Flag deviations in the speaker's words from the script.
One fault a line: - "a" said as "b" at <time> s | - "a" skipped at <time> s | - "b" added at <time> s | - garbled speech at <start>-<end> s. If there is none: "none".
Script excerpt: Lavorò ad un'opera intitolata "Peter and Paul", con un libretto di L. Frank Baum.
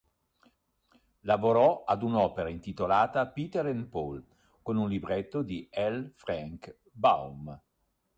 none